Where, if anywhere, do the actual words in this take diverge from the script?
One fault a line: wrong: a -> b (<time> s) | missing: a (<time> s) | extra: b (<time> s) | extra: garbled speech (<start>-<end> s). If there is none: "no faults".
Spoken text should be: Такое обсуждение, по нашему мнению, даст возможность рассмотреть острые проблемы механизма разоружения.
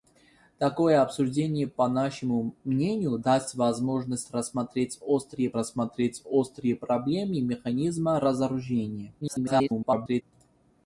extra: рассмотреть острые (5.5 s)
extra: garbled speech (9.2-10.2 s)